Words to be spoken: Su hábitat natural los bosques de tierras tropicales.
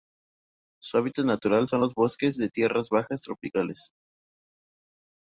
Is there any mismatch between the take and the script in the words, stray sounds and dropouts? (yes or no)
yes